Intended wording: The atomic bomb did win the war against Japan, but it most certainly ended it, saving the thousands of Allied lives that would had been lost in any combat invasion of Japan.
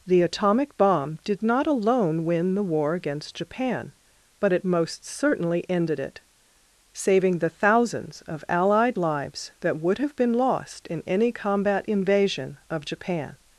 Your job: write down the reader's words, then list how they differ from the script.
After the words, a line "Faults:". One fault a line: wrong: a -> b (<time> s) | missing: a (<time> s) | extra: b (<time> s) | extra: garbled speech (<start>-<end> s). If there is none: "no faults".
The atomic bomb did not alone win the war against Japan, but it most certainly ended it, saving the thousands of Allied lives that would have been lost in any combat invasion of Japan.
Faults:
extra: not alone (1.4 s)
wrong: had -> have (10.0 s)